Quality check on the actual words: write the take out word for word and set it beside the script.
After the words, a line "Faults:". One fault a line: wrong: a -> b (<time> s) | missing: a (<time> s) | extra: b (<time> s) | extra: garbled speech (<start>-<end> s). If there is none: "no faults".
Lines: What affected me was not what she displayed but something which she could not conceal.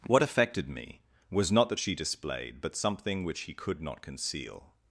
What affected me was not that she displayed but something which he could not conceal.
Faults:
wrong: what -> that (1.7 s)
wrong: she -> he (3.4 s)